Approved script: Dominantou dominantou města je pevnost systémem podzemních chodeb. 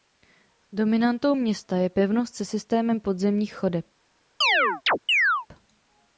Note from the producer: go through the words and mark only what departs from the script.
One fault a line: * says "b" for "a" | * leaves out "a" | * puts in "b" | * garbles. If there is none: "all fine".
* leaves out "dominantou"
* puts in "se"